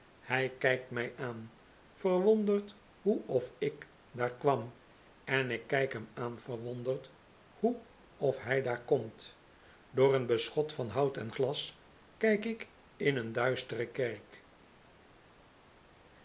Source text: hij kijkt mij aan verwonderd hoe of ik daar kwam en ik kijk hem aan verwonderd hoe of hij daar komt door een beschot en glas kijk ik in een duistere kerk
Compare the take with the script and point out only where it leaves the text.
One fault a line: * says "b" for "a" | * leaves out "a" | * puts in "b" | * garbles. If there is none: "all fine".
* puts in "van hout"